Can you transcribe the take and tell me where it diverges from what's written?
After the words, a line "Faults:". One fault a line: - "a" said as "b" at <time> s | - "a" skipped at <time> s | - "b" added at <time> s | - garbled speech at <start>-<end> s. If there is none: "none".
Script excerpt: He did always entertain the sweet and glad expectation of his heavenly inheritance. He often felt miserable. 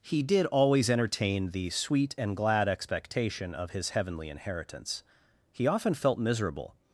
He did always entertain the sweet and glad expectation of his heavenly inheritance. He often felt miserable.
Faults:
none